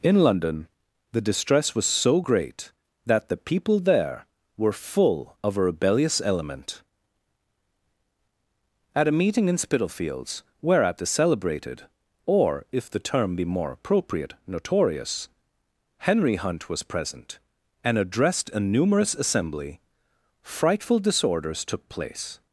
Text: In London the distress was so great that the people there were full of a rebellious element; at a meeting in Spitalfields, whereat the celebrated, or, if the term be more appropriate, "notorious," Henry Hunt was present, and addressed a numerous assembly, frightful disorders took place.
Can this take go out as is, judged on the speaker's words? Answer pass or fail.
pass